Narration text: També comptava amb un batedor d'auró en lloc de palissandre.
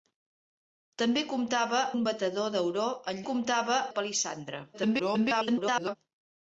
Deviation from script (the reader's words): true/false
true